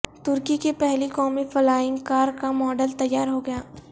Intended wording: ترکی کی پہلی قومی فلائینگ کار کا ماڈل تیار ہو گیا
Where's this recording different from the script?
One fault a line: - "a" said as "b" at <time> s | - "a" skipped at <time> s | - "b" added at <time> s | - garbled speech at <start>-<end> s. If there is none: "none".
none